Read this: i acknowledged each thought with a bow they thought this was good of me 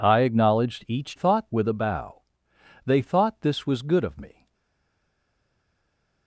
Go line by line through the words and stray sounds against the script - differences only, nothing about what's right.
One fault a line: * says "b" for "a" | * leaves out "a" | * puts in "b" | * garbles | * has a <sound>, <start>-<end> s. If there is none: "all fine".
all fine